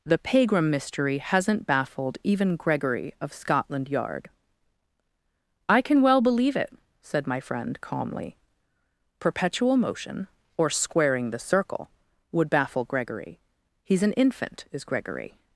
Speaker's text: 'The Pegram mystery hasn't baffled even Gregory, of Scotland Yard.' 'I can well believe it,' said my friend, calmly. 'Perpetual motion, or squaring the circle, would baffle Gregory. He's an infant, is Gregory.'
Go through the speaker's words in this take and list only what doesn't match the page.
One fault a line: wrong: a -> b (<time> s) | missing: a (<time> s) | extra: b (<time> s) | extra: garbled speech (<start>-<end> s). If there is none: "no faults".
no faults